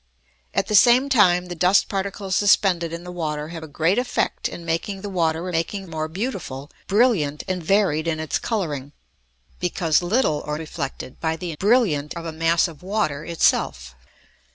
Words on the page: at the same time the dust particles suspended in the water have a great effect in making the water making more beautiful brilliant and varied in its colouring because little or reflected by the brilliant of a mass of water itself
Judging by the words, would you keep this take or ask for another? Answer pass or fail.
pass